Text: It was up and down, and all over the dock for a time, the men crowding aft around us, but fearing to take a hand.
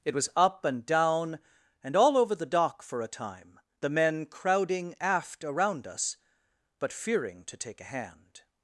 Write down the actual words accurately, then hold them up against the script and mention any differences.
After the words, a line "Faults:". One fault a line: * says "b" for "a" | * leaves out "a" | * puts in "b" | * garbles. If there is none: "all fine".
It was up and down, and all over the dock for a time, the men crowding aft around us, but fearing to take a hand.
Faults:
all fine